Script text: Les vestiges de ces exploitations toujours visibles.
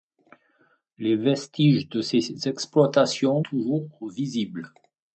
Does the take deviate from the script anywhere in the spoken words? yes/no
no